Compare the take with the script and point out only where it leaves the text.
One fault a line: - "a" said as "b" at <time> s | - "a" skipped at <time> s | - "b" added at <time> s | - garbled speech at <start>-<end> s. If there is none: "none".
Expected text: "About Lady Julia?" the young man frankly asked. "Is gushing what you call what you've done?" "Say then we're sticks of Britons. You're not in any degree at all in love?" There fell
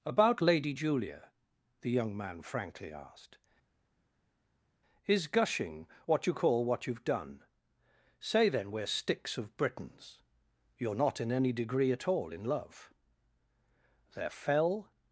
none